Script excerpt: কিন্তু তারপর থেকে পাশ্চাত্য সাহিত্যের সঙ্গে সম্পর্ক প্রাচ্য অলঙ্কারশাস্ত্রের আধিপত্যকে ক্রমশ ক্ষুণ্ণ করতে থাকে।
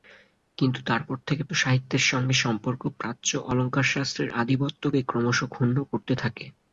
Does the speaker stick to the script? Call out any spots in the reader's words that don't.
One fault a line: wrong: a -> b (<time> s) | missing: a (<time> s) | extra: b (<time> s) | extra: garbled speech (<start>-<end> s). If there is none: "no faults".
missing: পাশ্চাত্য (1.4 s)